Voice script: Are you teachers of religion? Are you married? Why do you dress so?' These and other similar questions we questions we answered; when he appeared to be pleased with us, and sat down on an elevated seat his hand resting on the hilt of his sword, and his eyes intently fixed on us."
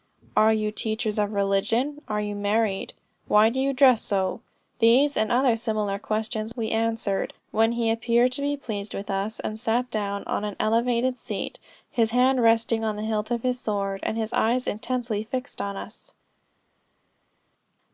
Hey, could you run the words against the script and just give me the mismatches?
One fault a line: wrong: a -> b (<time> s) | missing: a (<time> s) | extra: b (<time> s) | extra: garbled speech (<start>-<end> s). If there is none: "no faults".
missing: questions we (6.7 s)